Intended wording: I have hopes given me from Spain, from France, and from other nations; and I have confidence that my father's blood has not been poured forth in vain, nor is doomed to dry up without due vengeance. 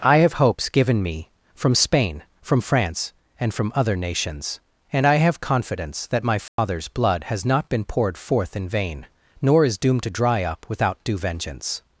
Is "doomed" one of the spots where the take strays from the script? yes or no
no